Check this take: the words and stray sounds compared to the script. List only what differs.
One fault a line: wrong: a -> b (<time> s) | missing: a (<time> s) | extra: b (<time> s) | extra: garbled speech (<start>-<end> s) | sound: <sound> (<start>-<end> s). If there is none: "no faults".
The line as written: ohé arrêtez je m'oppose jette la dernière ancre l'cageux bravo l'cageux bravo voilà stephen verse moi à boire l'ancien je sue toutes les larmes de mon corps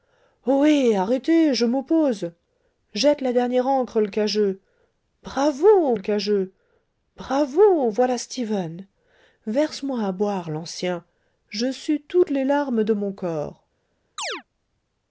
sound: chirp (14.2-14.4 s)